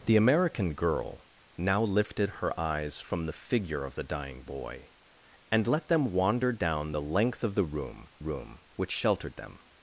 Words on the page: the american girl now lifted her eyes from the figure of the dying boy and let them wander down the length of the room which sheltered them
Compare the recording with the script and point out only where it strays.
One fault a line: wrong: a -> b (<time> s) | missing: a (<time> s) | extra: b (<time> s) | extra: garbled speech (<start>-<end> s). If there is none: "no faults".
extra: room (8.2 s)